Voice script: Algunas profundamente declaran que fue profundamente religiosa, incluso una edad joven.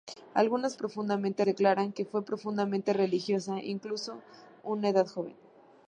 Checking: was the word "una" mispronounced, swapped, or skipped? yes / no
no